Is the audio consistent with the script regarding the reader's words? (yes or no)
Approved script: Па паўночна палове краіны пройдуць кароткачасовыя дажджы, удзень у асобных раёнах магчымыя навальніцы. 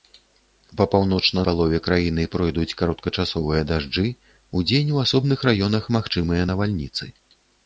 yes